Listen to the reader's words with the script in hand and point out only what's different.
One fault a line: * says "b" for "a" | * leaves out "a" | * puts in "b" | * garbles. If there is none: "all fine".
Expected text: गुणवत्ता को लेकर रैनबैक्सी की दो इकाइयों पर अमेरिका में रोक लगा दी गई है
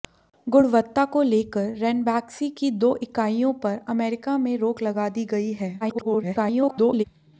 * garbles